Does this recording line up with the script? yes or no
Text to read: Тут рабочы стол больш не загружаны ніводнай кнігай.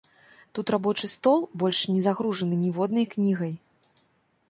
yes